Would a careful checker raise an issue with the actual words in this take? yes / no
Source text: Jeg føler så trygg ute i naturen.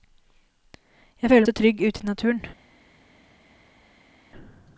no